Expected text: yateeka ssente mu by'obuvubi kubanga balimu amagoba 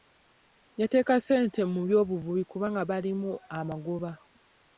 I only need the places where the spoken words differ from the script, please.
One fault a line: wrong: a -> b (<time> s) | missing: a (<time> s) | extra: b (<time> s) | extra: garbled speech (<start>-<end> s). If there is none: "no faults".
no faults